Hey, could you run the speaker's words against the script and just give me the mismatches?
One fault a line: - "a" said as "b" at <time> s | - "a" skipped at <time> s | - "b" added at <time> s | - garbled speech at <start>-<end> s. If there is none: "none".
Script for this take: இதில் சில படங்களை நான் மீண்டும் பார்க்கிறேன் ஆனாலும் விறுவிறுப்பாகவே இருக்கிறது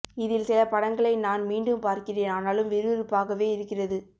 none